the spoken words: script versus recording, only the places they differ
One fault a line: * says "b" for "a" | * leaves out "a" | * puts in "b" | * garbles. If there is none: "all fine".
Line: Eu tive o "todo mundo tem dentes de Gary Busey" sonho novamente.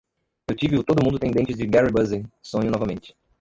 all fine